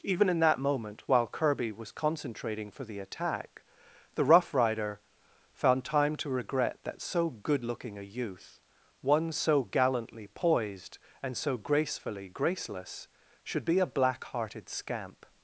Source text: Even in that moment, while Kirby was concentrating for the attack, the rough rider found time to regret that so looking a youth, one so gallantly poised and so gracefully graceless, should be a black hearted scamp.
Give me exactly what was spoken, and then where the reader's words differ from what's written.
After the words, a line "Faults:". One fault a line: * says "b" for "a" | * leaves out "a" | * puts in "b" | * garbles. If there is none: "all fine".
Even in that moment, while Kirby was concentrating for the attack, the rough rider found time to regret that so good looking a youth, one so gallantly poised and so gracefully graceless, should be a black hearted scamp.
Faults:
* puts in "good"